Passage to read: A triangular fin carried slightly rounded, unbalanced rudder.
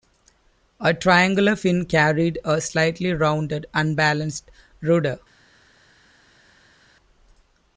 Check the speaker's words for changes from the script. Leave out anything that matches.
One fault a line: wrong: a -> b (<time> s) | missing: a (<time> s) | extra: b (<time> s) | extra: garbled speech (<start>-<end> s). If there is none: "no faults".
extra: a (2.4 s)